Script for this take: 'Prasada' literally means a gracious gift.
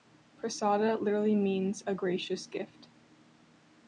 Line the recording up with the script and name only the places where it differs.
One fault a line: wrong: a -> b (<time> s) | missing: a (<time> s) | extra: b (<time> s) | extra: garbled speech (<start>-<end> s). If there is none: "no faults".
no faults